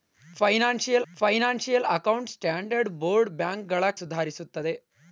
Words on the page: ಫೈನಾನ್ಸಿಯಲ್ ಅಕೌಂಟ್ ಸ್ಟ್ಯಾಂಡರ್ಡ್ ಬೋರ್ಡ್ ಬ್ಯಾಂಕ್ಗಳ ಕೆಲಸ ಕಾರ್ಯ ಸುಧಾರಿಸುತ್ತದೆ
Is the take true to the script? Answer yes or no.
no